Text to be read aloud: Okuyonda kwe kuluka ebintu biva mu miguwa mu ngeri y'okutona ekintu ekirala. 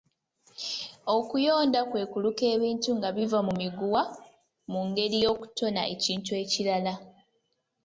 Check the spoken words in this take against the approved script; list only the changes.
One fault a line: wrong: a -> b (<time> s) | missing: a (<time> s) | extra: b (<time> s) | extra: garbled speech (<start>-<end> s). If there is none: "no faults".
extra: nga (3.0 s)